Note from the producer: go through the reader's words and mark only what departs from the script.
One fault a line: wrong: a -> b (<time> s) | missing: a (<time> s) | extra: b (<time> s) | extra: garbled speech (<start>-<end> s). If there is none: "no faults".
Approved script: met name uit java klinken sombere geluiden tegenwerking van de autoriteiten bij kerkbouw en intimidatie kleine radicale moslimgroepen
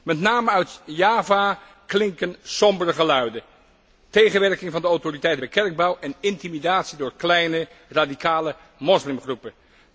extra: door (7.0 s)